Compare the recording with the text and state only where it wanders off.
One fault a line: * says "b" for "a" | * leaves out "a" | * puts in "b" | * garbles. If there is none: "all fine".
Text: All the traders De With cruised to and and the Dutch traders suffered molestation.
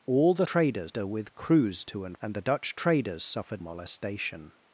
all fine